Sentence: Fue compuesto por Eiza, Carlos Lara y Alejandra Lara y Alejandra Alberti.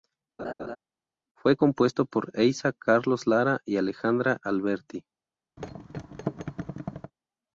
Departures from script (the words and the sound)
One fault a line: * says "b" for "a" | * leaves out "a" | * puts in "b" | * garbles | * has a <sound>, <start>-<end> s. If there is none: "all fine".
* has a laugh, 0.4-0.8 s
* leaves out "Lara y Alejandra"
* has a thud, 5.6-7.1 s